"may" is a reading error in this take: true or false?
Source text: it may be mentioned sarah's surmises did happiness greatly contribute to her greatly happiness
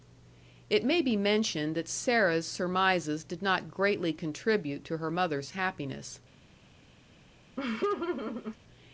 false